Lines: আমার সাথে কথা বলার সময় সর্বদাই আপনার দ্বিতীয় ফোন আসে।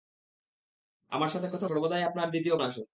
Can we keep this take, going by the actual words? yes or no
no